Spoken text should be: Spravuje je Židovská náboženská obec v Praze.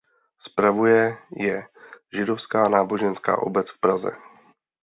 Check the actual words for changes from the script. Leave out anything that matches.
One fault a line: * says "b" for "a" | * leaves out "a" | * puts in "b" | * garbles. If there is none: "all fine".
all fine